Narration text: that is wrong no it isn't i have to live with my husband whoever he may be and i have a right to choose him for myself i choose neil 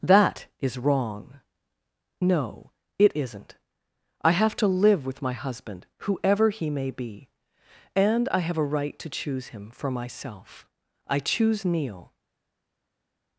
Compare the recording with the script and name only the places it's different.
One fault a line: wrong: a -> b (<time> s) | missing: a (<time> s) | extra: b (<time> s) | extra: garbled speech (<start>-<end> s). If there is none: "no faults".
no faults